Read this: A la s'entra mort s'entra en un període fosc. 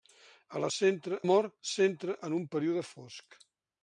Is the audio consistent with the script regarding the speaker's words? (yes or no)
yes